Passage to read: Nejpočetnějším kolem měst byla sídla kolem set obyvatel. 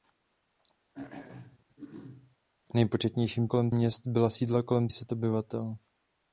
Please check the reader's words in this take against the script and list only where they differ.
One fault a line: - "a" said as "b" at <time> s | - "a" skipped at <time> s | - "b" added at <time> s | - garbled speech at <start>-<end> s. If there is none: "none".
none